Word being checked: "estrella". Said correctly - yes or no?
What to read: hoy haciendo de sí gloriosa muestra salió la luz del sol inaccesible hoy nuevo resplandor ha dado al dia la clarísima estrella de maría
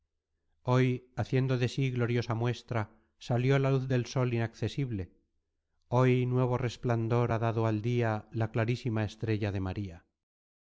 yes